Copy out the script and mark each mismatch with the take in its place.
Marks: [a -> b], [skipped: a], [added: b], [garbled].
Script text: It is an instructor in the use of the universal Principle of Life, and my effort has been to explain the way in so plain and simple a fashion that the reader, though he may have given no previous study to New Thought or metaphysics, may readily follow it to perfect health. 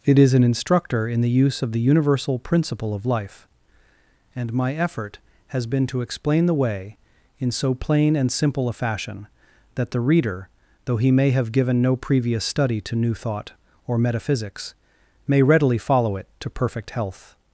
It is an instructor in the use of the universal Principle of Life, and my effort has been to explain the way in so plain and simple a fashion that the reader, though he may have given no previous study to New Thought or metaphysics, may readily follow it to perfect health.